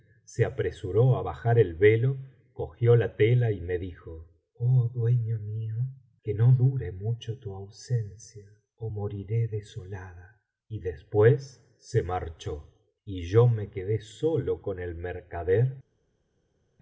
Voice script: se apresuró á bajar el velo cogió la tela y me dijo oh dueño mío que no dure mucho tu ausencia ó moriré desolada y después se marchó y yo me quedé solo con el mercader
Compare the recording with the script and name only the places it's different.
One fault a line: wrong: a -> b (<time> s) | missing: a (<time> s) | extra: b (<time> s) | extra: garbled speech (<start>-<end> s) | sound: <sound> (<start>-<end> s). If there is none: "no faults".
no faults